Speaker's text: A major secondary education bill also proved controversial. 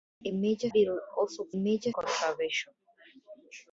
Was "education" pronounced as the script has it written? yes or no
no